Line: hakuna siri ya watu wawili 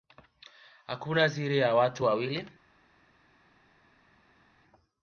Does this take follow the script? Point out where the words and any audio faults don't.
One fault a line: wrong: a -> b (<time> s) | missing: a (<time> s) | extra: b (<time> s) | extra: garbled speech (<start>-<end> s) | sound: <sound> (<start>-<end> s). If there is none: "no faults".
no faults